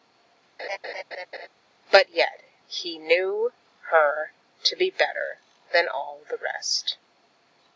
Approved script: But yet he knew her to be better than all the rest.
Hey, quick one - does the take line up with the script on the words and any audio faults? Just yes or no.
no